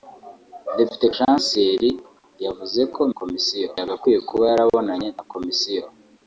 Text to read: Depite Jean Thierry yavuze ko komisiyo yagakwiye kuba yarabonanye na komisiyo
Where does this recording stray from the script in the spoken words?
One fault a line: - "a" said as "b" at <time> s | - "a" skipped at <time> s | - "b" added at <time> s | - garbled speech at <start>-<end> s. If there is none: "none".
none